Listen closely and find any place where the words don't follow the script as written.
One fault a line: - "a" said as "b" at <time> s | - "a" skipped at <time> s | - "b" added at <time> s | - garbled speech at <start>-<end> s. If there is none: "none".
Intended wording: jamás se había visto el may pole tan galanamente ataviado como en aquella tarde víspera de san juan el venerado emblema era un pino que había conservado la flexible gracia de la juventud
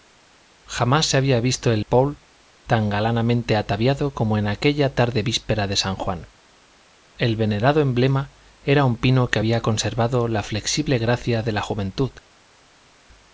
- "may" skipped at 1.9 s